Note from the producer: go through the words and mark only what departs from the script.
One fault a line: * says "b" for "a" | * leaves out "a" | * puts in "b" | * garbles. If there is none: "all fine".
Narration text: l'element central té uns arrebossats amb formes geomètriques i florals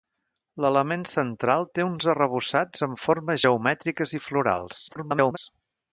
* garbles